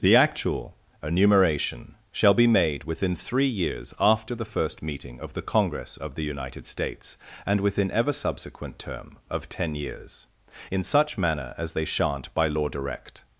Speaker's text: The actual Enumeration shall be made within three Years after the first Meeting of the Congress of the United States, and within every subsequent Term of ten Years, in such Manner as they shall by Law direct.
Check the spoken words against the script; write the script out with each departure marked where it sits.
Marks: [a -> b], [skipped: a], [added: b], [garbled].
The actual Enumeration shall be made within three Years after the first Meeting of the Congress of the United States, and within [every -> ever] subsequent Term of ten Years, in such Manner as they [shall -> shan't] by Law direct.